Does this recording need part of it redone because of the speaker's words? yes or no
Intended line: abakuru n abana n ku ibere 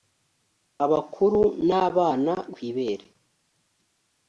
no